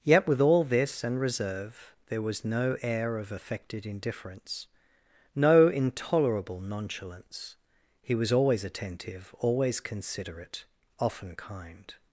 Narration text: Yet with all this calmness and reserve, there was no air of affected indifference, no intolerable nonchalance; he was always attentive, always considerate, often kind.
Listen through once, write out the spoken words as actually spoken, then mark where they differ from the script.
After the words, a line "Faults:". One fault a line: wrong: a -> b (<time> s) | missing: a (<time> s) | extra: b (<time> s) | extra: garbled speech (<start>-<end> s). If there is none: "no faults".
Yet with all this and reserve, there was no air of affected indifference, no intolerable nonchalance; he was always attentive, always considerate, often kind.
Faults:
missing: calmness (1.0 s)